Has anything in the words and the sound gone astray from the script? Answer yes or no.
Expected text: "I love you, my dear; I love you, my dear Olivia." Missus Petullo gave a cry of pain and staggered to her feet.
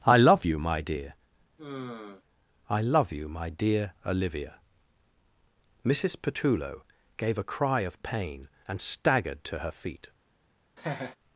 yes